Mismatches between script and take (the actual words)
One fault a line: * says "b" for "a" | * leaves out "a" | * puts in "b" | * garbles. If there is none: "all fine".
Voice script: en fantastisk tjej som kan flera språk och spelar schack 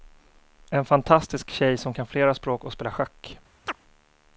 all fine